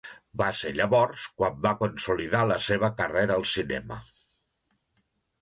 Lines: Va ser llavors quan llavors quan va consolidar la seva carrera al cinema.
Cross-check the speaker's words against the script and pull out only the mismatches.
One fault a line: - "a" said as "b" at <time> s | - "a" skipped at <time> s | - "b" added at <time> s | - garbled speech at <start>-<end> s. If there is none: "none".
- "llavors quan" skipped at 1.6 s